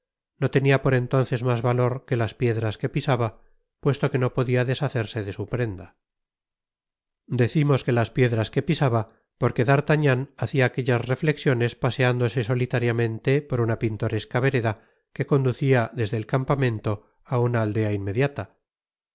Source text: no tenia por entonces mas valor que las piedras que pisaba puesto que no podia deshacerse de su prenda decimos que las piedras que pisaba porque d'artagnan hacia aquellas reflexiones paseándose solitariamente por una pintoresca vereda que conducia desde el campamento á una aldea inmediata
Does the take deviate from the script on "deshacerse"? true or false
false